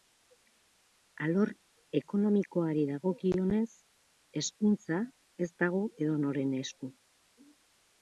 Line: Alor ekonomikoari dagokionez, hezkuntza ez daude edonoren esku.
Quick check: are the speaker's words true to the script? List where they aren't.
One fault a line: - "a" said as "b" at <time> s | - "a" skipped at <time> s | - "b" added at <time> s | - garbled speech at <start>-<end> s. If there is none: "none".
- "daude" said as "dago" at 5.7 s